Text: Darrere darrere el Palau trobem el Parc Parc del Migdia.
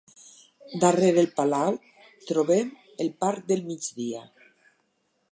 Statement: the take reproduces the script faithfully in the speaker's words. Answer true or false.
false